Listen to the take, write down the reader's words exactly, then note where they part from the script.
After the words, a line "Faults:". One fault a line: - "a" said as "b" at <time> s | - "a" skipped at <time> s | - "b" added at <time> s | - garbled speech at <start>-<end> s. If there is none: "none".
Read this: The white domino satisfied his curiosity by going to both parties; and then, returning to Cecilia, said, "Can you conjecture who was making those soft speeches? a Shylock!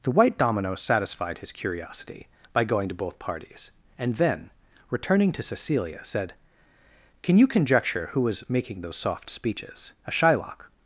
The white domino satisfied his curiosity by going to both parties; and then, returning to Cecilia, said, "Can you conjecture who was making those soft speeches? a Shylock!
Faults:
none